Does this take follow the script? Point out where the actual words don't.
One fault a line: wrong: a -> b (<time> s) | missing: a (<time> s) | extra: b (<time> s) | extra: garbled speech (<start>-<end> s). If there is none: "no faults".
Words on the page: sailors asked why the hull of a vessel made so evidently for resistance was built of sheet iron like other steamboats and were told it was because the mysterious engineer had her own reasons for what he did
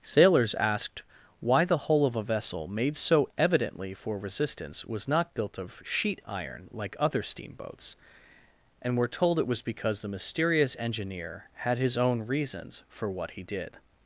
extra: not (5.1 s)
wrong: her -> his (11.8 s)